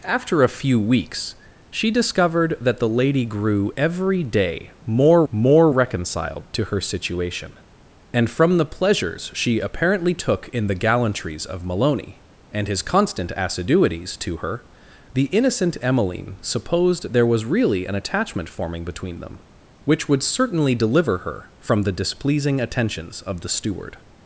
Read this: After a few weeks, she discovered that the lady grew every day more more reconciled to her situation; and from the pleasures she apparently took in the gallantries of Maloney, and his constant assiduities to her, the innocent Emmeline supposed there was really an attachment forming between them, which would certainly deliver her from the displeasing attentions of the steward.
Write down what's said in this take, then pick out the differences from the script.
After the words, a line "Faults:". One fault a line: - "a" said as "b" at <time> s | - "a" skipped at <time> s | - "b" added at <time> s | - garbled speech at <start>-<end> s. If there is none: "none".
After a few weeks, she discovered that the lady grew every day more more reconciled to her situation; and from the pleasures she apparently took in the gallantries of Maloney, and his constant assiduities to her, the innocent Emmeline supposed there was really an attachment forming between them, which would certainly deliver her from the displeasing attentions of the steward.
Faults:
none